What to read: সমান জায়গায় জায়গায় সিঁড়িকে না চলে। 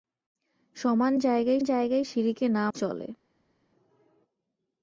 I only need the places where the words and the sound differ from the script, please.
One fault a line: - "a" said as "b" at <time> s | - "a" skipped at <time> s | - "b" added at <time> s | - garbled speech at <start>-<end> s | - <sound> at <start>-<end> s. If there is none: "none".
none